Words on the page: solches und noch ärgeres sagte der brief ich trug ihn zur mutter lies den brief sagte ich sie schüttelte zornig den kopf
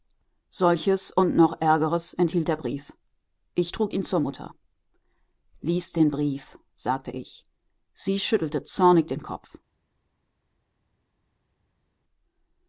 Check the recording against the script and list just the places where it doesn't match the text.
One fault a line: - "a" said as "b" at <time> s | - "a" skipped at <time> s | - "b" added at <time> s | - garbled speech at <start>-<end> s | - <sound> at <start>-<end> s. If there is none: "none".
- "sagte" said as "enthielt" at 2.1 s